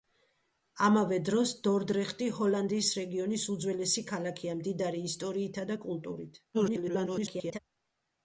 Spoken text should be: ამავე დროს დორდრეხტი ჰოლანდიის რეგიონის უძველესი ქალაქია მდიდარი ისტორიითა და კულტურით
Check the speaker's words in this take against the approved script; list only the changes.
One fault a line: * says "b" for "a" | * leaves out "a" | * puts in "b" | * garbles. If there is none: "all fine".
* garbles